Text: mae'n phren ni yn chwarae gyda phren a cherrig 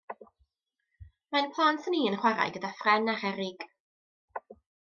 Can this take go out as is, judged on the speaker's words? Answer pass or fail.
fail